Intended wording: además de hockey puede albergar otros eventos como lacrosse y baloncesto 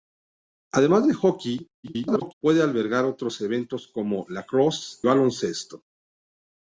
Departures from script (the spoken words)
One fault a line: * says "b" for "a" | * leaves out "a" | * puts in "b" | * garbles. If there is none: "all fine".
* garbles
* leaves out "y"